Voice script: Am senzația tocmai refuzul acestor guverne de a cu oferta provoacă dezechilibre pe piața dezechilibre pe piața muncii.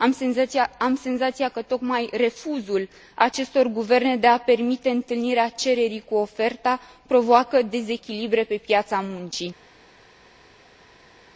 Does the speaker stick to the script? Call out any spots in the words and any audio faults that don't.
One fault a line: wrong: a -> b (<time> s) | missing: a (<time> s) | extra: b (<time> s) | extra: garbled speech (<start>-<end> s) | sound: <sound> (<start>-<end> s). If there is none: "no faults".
extra: că (1.5 s)
extra: permite întâlnirea cererii (4.4 s)
missing: dezechilibre pe piața (9.0 s)